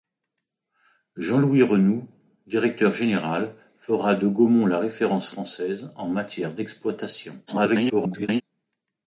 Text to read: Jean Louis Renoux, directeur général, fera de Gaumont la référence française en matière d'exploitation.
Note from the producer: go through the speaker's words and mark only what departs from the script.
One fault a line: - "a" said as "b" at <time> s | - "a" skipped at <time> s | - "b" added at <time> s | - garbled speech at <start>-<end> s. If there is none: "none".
- garbled speech at 7.5-8.4 s